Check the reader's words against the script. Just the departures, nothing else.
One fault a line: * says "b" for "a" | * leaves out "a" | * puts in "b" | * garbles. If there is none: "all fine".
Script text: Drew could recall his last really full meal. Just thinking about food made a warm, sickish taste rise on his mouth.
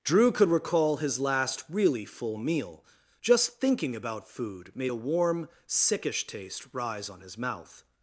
all fine